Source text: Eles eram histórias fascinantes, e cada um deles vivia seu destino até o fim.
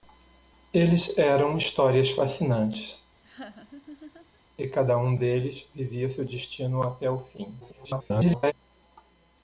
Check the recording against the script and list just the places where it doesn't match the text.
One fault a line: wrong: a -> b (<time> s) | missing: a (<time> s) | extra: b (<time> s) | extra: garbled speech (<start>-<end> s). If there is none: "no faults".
extra: garbled speech (7.6-8.5 s)